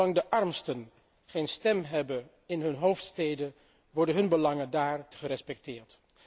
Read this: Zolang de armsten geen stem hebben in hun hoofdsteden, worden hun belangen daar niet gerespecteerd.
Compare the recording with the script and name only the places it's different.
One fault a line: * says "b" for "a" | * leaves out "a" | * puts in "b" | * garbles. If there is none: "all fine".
* leaves out "niet"